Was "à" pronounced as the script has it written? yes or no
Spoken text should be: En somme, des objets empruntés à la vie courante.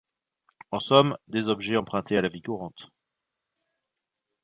yes